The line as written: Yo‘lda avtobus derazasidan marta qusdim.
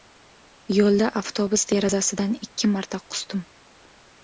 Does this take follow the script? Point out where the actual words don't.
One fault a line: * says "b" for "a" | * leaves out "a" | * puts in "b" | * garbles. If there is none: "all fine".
* puts in "ikki"